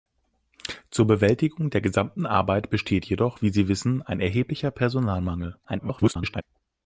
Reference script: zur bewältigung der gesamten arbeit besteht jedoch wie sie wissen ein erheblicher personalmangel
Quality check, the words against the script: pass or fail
fail